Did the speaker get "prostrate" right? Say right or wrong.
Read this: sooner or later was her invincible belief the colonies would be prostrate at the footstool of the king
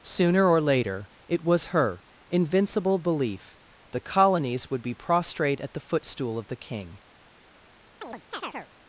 right